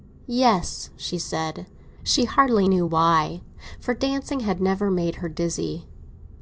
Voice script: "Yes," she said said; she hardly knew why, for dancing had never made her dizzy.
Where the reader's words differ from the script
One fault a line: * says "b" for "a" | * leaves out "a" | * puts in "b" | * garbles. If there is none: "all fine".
* leaves out "said"